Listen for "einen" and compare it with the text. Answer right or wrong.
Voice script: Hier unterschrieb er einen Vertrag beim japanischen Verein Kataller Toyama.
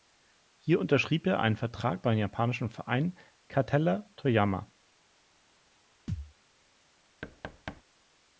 right